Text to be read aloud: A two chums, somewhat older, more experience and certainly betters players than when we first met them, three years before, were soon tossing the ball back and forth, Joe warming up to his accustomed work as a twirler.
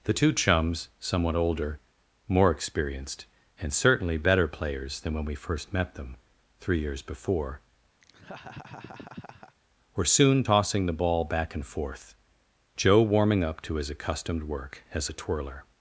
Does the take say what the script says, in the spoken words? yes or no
no